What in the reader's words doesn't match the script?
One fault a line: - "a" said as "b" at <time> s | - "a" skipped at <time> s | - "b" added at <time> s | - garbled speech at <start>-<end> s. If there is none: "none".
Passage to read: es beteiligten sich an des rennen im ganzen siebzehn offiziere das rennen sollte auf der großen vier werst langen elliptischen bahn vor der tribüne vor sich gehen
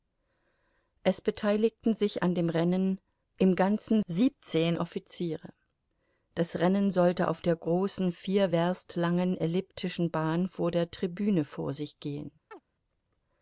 - "des" said as "dem" at 2.3 s